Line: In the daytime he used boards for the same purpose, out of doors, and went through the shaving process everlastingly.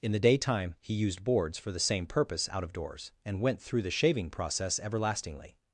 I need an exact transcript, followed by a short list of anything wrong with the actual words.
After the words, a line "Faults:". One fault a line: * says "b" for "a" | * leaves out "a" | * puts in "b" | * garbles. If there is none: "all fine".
In the daytime he used boards for the same purpose, out of doors, and went through the shaving process everlastingly.
Faults:
all fine